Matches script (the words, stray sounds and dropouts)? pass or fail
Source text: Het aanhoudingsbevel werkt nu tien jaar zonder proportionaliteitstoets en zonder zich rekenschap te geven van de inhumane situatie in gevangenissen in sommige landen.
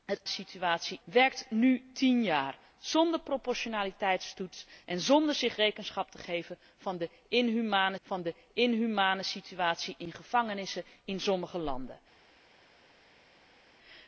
fail